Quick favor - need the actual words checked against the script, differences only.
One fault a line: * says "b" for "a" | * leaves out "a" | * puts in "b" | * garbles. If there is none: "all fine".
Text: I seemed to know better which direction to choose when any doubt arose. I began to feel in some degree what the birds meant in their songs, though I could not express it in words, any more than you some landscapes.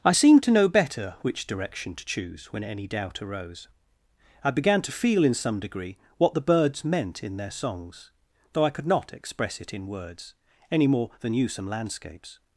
all fine